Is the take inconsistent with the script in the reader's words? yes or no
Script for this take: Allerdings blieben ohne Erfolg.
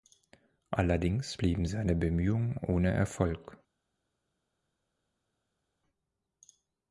yes